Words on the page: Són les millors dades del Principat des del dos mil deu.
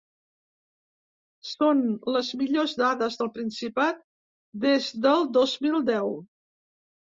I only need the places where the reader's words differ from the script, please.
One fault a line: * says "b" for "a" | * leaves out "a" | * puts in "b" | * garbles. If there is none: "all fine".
all fine